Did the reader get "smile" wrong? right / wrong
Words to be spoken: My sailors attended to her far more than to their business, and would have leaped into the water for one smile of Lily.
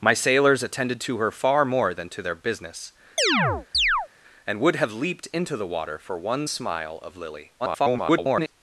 right